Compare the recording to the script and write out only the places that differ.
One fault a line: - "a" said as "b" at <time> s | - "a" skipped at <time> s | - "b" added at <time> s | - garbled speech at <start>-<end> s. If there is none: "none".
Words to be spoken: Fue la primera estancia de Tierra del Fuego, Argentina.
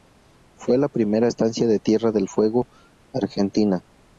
none